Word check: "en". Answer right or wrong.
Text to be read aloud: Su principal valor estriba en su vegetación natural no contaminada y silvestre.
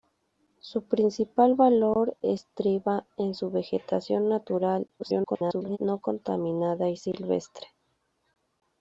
right